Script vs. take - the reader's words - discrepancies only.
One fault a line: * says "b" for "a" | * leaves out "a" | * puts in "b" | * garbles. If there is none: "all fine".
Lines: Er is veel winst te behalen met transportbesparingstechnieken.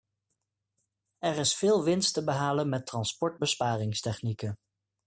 all fine